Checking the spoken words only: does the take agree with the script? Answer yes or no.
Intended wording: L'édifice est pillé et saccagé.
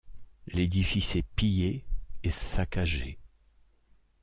yes